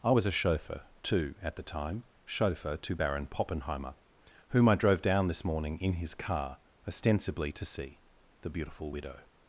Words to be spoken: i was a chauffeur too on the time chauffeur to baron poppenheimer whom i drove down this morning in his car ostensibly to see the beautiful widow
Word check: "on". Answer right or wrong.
wrong